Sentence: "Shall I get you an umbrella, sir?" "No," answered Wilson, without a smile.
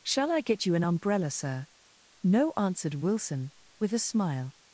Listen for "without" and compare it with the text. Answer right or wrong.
wrong